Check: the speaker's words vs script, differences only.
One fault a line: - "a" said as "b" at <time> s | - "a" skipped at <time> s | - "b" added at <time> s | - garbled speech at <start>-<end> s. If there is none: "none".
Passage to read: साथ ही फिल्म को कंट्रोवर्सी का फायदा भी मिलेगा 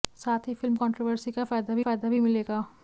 - "को" skipped at 0.8 s
- "फायदा भी" added at 1.8 s